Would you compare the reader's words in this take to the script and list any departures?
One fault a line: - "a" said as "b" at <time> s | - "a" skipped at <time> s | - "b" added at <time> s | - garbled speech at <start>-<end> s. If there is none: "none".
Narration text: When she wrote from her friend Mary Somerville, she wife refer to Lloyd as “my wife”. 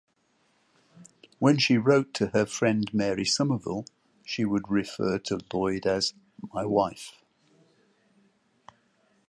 - "from" said as "to" at 2.1 s
- "wife" said as "would" at 4.4 s